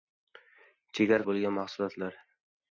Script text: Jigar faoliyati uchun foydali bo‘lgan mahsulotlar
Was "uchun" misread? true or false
true